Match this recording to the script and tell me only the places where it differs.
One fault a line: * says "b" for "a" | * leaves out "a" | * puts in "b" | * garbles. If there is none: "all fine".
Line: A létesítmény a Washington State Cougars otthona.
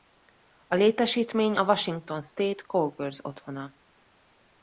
all fine